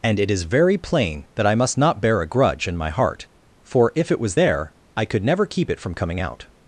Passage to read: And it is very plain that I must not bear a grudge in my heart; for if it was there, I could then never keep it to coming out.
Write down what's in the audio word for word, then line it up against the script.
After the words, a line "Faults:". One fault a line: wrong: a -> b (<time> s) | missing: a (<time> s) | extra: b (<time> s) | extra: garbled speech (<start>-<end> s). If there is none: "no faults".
And it is very plain that I must not bear a grudge in my heart; for if it was there, I could never keep it from coming out.
Faults:
missing: then (5.2 s)
wrong: to -> from (5.8 s)